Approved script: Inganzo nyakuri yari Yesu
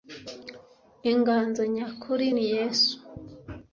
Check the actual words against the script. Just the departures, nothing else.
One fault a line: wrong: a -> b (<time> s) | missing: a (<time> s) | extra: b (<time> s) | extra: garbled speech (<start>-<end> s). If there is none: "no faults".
wrong: yari -> ni (2.3 s)